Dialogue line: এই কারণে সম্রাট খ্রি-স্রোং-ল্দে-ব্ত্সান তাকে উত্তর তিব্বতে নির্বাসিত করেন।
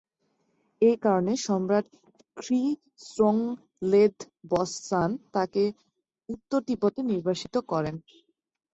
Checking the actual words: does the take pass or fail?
pass